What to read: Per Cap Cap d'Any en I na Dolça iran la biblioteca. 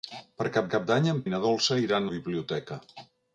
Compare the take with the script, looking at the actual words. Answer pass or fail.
pass